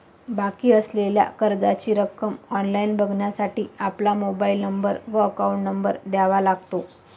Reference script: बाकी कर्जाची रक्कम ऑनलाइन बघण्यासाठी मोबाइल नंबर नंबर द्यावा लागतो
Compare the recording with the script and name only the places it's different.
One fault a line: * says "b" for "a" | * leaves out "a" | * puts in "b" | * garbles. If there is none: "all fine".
* puts in "असलेल्या"
* puts in "आपला"
* puts in "व अकाउंट"